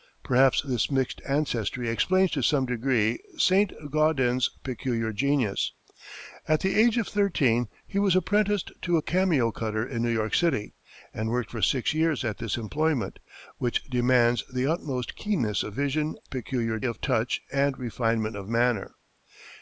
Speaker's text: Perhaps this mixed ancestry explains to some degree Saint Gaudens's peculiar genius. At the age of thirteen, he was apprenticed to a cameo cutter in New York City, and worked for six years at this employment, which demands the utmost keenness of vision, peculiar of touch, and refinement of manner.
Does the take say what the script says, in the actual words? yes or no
yes